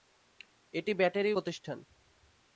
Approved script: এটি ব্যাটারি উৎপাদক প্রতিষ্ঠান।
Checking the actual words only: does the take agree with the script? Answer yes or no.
no